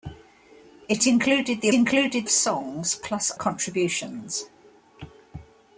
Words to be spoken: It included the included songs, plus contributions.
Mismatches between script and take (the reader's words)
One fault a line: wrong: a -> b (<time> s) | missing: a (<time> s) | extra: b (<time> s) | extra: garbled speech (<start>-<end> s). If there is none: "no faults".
no faults